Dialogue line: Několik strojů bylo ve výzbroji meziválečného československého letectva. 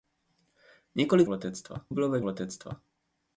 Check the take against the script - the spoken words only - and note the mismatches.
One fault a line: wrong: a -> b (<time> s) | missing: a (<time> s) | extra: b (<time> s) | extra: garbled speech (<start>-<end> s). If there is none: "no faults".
wrong: strojů -> letectva (1.3 s)
missing: výzbroji meziválečného československého (2.2 s)